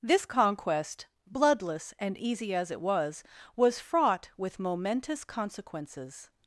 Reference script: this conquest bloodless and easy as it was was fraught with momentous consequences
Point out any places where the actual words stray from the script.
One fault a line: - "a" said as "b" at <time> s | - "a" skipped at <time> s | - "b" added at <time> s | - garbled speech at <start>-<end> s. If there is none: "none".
none